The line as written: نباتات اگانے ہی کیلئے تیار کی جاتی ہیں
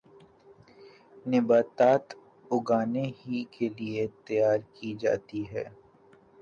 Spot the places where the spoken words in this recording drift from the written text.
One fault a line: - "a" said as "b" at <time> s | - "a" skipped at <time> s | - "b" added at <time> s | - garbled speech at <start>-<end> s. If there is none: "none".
none